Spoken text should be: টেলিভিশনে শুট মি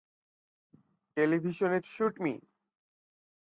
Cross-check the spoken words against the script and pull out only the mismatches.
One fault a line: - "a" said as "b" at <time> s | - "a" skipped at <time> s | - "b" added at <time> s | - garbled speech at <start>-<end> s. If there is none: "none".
none